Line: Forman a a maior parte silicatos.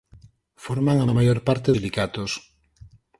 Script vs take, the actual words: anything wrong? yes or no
no